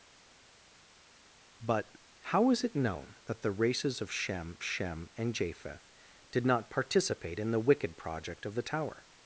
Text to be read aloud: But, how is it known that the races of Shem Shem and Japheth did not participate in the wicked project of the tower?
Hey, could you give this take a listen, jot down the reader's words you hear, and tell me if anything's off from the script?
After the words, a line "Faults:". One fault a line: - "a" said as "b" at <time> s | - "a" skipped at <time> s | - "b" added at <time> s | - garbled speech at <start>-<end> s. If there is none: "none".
But, how is it known that the races of Shem Shem and Japheth did not participate in the wicked project of the tower?
Faults:
none